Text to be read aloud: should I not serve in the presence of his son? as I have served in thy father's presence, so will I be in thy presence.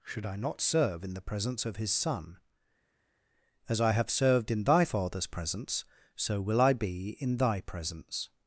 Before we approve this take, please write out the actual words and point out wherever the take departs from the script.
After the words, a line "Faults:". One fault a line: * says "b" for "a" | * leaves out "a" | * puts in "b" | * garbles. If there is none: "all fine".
should I not serve in the presence of his son? as I have served in thy father's presence, so will I be in thy presence.
Faults:
all fine